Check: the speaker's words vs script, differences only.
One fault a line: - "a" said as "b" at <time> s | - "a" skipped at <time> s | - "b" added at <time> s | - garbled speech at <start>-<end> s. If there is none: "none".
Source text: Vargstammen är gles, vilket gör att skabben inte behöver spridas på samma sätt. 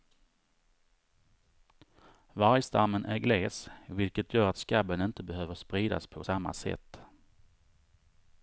none